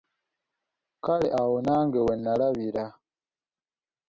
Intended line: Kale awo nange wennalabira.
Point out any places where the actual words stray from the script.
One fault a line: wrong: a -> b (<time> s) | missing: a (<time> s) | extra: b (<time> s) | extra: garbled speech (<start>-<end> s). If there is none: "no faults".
no faults